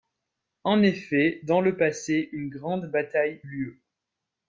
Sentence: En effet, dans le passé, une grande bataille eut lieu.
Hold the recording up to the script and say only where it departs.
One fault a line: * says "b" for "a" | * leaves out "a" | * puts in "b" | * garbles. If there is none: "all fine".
* leaves out "eut"